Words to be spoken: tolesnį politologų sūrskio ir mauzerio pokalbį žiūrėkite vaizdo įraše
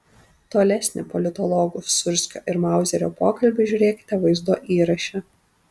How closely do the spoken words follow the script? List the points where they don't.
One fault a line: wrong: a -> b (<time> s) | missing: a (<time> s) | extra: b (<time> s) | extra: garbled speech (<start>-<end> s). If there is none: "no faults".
no faults